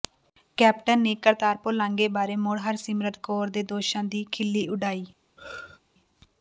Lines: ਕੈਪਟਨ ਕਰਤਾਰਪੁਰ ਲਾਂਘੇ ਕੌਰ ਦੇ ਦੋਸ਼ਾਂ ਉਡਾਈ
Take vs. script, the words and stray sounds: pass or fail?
fail